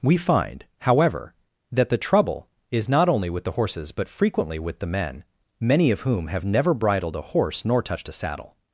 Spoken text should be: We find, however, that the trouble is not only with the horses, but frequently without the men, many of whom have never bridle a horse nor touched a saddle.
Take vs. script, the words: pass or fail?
fail